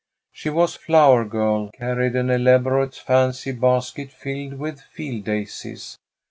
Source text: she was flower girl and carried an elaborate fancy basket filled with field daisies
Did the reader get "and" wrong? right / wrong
wrong